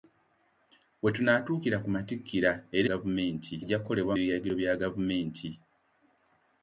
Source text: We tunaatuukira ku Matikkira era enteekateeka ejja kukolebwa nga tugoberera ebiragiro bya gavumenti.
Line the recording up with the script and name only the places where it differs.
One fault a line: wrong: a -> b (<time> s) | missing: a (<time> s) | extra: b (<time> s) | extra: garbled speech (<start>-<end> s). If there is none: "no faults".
wrong: enteekateeka -> gavumenti (2.9 s)
missing: nga tugoberera (4.1 s)